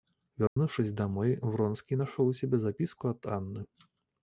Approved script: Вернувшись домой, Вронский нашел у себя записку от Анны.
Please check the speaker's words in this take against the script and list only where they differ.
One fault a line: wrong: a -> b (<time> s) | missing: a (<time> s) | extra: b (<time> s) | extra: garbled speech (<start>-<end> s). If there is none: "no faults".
no faults